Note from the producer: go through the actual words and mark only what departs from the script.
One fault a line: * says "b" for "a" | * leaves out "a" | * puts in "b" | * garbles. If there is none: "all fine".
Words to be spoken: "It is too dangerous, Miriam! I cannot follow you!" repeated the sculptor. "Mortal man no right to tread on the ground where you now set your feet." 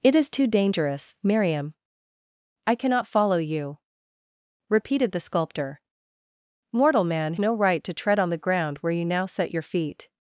all fine